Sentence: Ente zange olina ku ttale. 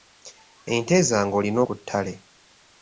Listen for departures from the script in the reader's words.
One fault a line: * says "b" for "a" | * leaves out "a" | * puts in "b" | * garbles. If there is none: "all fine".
all fine